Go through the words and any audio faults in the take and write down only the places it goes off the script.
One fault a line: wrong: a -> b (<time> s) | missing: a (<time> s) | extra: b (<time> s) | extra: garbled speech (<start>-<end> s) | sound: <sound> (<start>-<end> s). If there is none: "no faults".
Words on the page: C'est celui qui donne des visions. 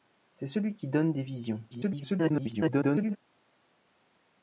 extra: garbled speech (1.7-3.2 s)